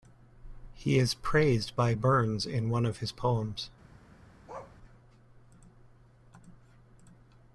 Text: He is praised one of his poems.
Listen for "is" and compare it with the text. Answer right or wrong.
right